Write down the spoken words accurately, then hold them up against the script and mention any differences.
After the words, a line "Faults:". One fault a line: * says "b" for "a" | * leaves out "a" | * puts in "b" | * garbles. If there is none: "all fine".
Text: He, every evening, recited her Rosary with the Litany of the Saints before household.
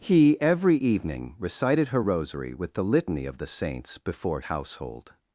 He, every evening, recited her Rosary with the Litany of the Saints before household.
Faults:
all fine